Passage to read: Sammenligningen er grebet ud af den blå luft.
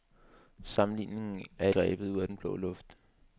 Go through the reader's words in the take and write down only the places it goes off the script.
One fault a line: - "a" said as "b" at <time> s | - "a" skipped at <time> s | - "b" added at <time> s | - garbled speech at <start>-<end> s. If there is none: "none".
none